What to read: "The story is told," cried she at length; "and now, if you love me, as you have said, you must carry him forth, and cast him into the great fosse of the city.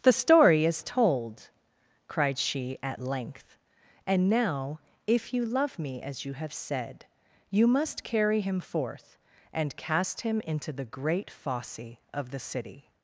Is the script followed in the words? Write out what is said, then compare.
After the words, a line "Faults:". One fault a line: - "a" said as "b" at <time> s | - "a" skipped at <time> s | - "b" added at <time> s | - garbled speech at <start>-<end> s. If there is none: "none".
"The story is told," cried she at length; "and now, if you love me, as you have said, you must carry him forth, and cast him into the great fosse of the city.
Faults:
none